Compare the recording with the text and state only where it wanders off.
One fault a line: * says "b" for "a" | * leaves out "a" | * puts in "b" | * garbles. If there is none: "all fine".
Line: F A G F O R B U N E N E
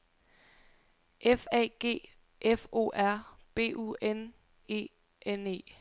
all fine